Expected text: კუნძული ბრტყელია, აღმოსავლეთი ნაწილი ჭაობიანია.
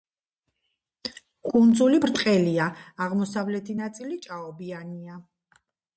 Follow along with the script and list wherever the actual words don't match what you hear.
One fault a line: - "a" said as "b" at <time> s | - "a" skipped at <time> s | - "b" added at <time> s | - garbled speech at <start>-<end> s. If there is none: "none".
none